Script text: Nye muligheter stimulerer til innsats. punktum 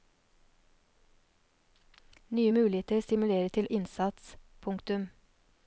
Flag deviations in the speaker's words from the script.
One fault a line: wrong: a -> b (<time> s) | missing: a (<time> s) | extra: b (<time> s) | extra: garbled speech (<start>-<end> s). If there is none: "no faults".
no faults